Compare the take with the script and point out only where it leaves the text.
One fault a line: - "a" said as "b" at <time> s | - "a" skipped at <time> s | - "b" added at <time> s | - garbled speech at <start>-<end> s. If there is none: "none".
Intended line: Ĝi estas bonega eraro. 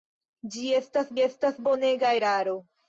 - "estas" added at 1.2 s